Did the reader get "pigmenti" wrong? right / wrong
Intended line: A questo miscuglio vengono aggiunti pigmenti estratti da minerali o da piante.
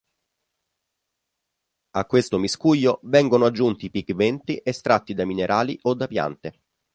right